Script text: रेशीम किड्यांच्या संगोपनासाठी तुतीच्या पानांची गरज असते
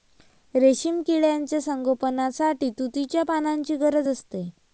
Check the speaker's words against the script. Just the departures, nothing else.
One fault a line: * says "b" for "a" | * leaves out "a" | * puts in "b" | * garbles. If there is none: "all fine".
all fine